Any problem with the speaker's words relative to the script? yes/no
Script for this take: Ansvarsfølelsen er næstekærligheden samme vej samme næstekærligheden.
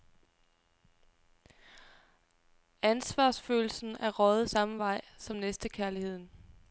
yes